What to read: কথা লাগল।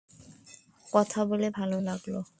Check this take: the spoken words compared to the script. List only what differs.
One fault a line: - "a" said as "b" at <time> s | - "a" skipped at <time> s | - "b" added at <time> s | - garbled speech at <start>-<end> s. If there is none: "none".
- "বলে ভালো" added at 1.2 s